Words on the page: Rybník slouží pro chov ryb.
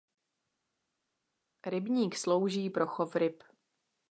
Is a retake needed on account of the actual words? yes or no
no